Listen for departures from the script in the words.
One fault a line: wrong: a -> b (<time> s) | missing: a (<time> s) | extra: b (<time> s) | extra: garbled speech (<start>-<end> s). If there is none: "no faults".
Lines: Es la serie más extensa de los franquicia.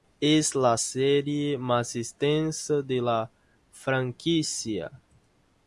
wrong: los -> la (3.0 s)